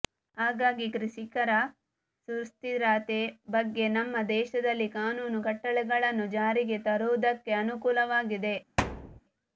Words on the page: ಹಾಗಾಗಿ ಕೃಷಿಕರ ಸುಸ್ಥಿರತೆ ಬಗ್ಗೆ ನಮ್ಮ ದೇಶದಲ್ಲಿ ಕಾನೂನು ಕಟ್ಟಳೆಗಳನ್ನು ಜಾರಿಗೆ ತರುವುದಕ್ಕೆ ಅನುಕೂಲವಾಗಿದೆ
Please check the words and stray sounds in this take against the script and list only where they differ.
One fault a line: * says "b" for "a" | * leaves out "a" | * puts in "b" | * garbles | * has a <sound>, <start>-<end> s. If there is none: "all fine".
* has a thud, 8.8-9.2 s